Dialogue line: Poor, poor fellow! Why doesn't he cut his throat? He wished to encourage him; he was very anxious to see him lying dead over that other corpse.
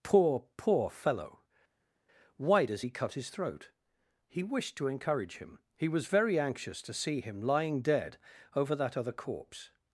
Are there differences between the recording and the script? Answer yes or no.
yes